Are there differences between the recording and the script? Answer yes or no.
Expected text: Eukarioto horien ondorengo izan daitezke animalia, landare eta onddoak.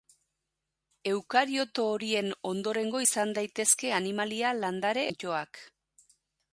yes